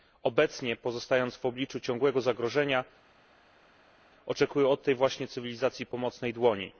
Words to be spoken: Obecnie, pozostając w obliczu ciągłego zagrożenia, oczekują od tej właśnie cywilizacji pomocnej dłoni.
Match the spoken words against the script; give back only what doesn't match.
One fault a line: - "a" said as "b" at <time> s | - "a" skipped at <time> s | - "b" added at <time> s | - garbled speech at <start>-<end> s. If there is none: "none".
none